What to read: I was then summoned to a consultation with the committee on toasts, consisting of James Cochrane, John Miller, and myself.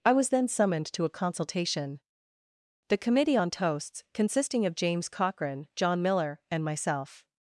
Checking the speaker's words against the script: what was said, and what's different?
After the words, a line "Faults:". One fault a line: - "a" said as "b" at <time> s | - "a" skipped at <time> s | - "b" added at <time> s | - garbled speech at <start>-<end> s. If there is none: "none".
I was then summoned to a consultation the committee on toasts, consisting of James Cochrane, John Miller, and myself.
Faults:
- "with" skipped at 2.0 s